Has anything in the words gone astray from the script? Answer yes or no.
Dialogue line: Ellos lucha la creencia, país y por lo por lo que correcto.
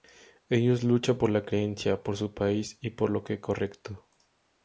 yes